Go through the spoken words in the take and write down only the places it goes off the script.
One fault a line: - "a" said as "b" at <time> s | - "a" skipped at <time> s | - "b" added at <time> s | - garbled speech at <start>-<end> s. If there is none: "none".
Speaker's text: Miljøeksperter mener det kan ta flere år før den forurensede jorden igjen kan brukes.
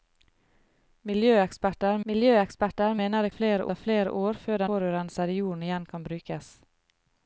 - "miljøeksperter" added at 2.1 s
- "kan" said as "flere" at 3.4 s
- "den" skipped at 4.6 s